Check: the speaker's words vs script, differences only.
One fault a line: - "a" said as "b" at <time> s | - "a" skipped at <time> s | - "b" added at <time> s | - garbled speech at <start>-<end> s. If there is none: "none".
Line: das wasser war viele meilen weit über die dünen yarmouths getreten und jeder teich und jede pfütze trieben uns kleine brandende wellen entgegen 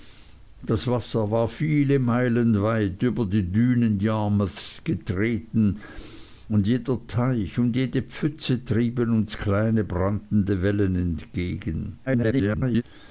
- garbled speech at 12.1-12.8 s